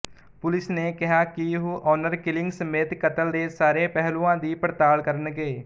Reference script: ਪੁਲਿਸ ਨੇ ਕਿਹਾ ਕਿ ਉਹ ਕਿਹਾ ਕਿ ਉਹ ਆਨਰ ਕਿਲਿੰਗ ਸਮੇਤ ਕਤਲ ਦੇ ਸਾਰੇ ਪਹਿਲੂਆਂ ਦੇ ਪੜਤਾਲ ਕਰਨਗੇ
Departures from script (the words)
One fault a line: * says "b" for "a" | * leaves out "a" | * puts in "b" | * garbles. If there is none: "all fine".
* leaves out "ਕਿਹਾ ਕਿ ਉਹ"
* says "ਦੀ" for "ਦੇ"